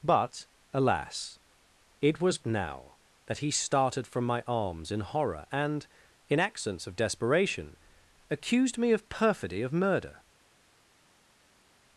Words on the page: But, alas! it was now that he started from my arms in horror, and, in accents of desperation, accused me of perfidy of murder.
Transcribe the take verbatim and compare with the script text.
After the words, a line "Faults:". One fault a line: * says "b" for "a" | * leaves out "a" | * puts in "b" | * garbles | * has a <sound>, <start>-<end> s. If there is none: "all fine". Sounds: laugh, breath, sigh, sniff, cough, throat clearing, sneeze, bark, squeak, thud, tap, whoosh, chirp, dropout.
But, alas! it was now that he started from my arms in horror, and, in accents of desperation, accused me of perfidy of murder.
Faults:
all fine